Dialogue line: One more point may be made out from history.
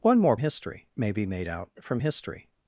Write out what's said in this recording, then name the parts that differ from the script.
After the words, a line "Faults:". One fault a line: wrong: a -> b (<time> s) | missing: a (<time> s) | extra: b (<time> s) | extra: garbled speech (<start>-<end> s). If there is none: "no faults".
One more history may be made out from history.
Faults:
wrong: point -> history (0.4 s)